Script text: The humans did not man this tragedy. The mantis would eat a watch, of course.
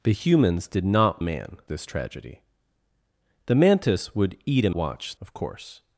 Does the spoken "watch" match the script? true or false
true